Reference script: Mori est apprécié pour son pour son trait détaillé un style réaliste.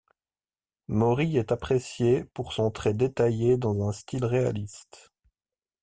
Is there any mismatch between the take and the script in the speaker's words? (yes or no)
yes